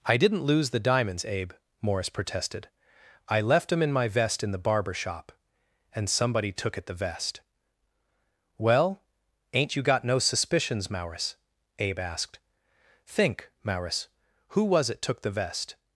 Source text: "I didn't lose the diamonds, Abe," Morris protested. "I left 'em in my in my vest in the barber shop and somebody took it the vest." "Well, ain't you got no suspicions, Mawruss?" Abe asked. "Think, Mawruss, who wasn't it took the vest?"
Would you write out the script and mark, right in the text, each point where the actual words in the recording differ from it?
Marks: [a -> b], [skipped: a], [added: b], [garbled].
"I didn't lose the diamonds, Abe," Morris protested. "I left 'em in my [skipped: in my] vest in the barber shop and somebody took it the vest." "Well, ain't you got no suspicions, Mawruss?" Abe asked. "Think, Mawruss, who [wasn't -> was] it took the vest?"